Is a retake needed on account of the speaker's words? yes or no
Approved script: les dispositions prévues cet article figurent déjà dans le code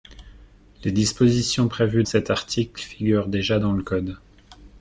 no